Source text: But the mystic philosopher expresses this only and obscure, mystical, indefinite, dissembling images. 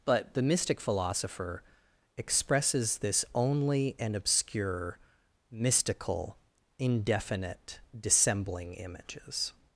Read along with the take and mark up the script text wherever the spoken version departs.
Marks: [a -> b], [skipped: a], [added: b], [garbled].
But the mystic philosopher expresses this only and obscure, mystical, indefinite, dissembling images.